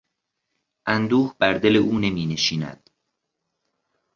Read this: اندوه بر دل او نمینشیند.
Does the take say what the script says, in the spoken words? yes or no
yes